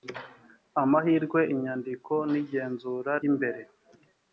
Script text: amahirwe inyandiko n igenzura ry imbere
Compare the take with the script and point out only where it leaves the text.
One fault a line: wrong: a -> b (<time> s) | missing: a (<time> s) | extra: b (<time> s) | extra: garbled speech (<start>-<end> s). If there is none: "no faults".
missing: ry (3.1 s)